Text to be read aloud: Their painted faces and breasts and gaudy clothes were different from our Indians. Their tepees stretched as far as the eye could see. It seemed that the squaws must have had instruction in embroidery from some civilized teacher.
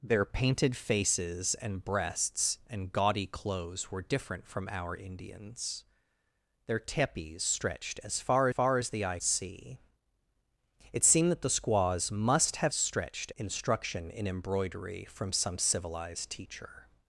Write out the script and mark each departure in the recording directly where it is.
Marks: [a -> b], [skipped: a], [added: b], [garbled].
Their painted faces and breasts and gaudy clothes were different from our Indians. Their tepees stretched as far [added: far] as the eye [skipped: could] see. It seemed that the squaws must have [had -> stretched] instruction in embroidery from some civilized teacher.